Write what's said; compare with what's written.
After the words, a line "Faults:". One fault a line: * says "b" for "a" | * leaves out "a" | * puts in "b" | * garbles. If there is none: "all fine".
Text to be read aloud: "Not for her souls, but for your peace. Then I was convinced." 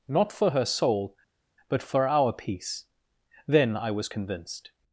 "Not for her soul, but for our peace. Then I was convinced."
Faults:
* says "soul" for "souls"
* says "our" for "your"